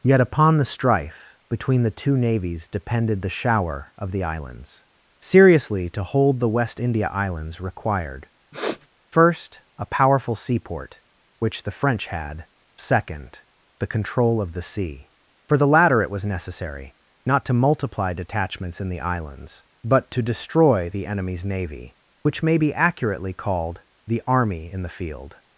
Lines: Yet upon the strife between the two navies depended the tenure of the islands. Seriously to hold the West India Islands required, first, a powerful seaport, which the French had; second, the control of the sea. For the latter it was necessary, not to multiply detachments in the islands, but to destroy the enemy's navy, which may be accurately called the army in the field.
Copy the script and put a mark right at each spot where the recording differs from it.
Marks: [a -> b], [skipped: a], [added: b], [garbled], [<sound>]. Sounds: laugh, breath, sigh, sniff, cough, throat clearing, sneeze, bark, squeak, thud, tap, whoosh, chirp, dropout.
Yet upon the strife between the two navies depended the [tenure -> shower] of the islands. Seriously to hold the West India Islands required, [sniff] first, a powerful seaport, which the French had; second, the control of the sea. For the latter it was necessary, not to multiply detachments in the islands, but to destroy the enemy's navy, which may be accurately called the army in the field.